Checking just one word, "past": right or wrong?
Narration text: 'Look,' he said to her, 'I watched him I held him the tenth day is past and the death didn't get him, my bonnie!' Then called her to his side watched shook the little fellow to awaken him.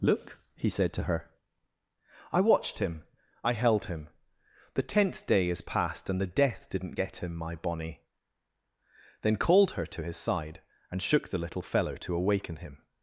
right